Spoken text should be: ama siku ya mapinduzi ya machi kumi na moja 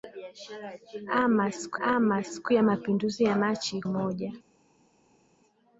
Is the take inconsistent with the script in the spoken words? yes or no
yes